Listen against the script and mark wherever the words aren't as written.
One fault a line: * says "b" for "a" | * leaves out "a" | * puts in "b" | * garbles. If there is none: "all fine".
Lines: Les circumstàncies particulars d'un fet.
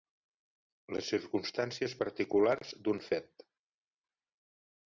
all fine